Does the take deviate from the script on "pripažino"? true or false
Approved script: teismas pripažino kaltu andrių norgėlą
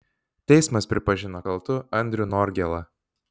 false